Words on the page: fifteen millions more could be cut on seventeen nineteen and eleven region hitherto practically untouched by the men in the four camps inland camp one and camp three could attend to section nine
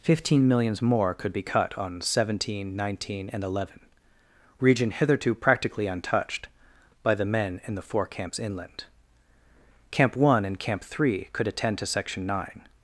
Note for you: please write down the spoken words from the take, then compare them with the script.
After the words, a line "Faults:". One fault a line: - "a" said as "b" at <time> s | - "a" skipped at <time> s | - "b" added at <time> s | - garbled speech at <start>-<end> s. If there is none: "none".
fifteen millions more could be cut on seventeen nineteen and eleven region hitherto practically untouched by the men in the four camps inland camp one and camp three could attend to section nine
Faults:
none